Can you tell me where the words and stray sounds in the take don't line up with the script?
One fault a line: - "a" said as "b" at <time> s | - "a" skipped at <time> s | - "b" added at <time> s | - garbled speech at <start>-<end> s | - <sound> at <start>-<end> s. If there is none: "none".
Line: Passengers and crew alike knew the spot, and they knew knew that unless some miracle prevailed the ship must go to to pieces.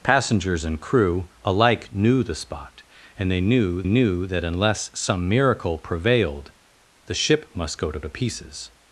none